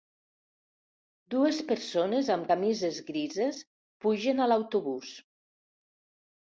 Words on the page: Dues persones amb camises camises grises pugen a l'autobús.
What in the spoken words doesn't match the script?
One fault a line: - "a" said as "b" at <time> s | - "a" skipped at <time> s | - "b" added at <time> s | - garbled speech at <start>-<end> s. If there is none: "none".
- "camises" skipped at 3.0 s